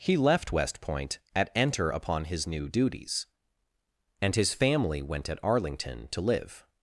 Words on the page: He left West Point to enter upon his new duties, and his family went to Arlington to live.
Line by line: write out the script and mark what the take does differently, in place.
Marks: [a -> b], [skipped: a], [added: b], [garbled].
He left West Point [to -> at] enter upon his new duties, and his family went [to -> at] Arlington to live.